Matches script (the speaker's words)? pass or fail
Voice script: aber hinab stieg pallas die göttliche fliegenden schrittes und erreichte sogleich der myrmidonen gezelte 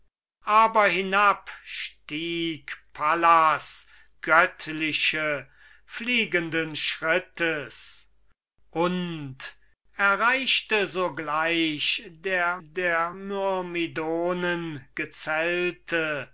fail